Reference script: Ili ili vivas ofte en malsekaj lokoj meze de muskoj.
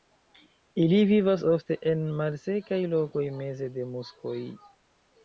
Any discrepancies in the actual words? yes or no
yes